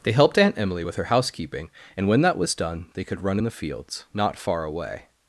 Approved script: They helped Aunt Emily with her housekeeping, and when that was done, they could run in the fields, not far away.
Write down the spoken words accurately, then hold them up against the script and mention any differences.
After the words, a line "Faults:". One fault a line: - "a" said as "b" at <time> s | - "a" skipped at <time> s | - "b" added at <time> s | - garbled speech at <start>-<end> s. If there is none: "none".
They helped Aunt Emily with her housekeeping, and when that was done, they could run in the fields, not far away.
Faults:
none